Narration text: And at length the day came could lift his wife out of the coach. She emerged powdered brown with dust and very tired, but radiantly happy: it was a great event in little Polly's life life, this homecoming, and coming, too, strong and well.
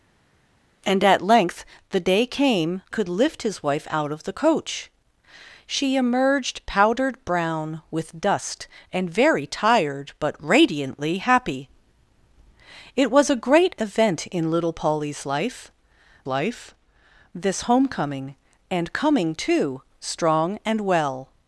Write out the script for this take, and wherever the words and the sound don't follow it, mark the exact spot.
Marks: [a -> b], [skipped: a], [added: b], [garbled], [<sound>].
And at length the day came could lift his wife out of the coach. She emerged powdered brown with dust and very tired, but radiantly happy: it was a great event in little Polly's life life, this homecoming, and coming, too, strong and well.